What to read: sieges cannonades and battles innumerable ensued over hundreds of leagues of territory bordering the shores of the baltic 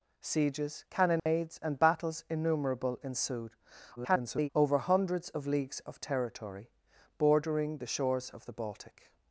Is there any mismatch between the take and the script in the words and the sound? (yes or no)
yes